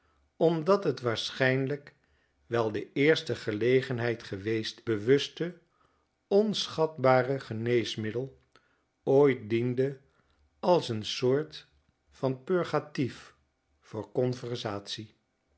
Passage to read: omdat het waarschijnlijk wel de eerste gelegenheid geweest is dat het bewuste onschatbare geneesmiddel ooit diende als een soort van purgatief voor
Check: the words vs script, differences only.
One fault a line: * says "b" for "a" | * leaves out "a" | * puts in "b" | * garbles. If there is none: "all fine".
* leaves out "is dat het"